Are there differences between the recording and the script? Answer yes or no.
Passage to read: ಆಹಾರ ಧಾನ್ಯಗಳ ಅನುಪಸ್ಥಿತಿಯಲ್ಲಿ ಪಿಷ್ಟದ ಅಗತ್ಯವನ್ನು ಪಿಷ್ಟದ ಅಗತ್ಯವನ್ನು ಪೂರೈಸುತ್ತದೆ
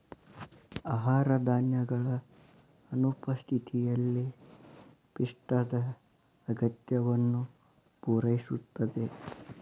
yes